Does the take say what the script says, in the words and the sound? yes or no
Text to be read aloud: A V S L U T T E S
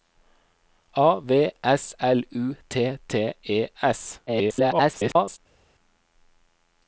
no